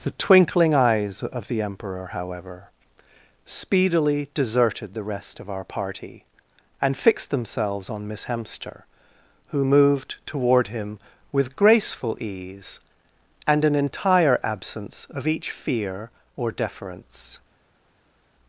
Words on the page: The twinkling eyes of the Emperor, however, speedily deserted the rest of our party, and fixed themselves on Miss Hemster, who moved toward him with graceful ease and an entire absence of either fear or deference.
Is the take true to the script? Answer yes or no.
no